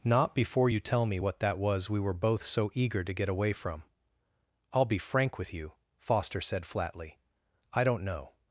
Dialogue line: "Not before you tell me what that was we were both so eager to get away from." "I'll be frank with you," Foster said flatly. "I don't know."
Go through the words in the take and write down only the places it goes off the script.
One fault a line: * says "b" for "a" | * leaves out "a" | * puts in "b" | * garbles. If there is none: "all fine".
all fine